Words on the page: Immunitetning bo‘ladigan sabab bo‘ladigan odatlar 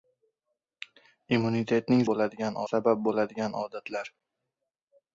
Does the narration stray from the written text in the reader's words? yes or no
no